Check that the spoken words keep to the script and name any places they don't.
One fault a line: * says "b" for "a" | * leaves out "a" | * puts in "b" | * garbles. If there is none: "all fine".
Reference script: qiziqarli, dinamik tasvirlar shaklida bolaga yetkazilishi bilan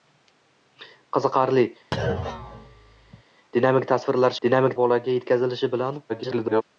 * says "dinamik" for "shaklida"
* garbles